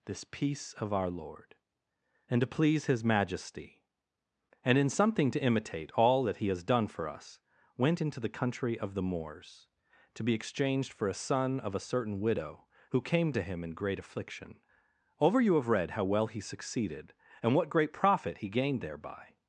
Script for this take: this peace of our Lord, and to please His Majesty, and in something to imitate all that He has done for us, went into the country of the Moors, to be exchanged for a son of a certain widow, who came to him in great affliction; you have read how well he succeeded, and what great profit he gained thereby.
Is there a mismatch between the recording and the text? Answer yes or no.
yes